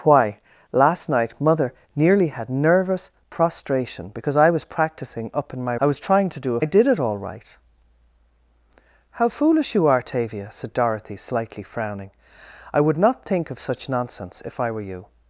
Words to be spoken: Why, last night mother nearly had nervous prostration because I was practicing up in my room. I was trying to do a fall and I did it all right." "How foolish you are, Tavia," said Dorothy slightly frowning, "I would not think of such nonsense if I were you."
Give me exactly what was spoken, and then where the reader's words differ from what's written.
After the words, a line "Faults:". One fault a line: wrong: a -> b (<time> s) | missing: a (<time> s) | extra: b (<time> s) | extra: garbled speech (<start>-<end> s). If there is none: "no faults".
Why, last night mother nearly had nervous prostration because I was practicing up in my. I was trying to do a I did it all right." "How foolish you are, Tavia," said Dorothy slightly frowning, "I would not think of such nonsense if I were you."
Faults:
missing: room (5.8 s)
missing: fall and (6.6 s)